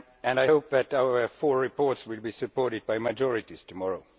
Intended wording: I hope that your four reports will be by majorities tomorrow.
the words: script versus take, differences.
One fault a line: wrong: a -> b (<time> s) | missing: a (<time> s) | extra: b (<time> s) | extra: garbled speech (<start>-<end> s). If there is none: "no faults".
wrong: your -> our (0.9 s)
extra: supported (2.3 s)